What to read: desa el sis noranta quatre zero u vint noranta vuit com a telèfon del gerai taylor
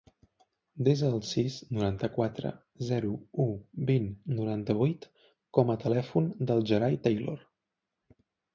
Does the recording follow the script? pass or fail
pass